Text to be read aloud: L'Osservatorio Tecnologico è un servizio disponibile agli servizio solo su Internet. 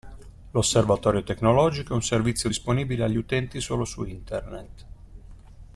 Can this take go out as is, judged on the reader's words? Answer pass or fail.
fail